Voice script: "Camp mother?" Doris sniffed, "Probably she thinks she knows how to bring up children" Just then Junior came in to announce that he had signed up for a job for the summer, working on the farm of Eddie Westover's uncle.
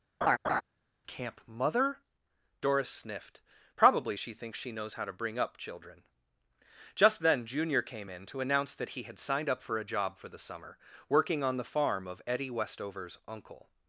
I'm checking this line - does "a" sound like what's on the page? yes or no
yes